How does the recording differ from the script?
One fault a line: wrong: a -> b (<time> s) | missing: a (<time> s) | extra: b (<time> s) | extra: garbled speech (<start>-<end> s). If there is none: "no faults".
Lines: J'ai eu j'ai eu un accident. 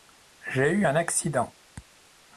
missing: j'ai eu (0.9 s)